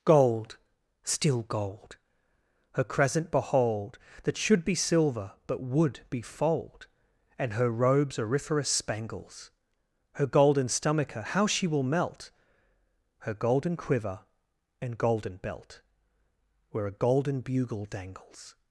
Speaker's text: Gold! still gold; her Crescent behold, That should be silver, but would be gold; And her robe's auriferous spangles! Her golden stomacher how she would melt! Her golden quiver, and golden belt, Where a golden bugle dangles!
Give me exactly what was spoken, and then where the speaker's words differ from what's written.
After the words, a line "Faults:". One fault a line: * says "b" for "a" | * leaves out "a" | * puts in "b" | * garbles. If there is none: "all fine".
Gold! still gold; her Crescent behold, That should be silver, but would be fold; And her robe's auriferous spangles! Her golden stomacher how she will melt! Her golden quiver, and golden belt, Where a golden bugle dangles!
Faults:
* says "fold" for "gold"
* says "will" for "would"